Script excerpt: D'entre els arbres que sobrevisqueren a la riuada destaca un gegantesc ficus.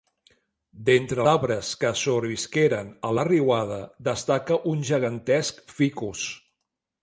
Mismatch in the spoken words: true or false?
true